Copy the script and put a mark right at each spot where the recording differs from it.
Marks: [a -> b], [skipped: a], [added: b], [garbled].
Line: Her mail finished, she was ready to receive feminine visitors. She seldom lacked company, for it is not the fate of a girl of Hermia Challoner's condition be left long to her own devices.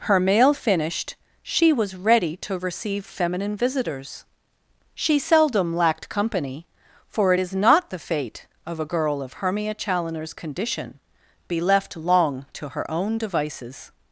Her mail finished, she was ready to receive feminine visitors. She seldom lacked company, for it is not the fate of a girl of Hermia Challoner's condition be left long to her own devices.